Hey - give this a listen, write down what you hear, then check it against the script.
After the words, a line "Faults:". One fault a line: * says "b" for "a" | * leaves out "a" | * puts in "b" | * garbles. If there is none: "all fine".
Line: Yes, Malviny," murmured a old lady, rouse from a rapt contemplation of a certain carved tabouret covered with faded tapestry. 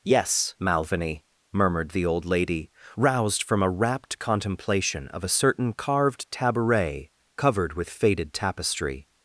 Yes, Malviny," murmured the old lady, roused from a rapt contemplation of a certain carved tabouret covered with faded tapestry.
Faults:
* says "the" for "a"
* says "roused" for "rouse"